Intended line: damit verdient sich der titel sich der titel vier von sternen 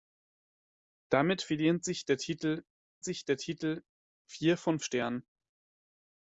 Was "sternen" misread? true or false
false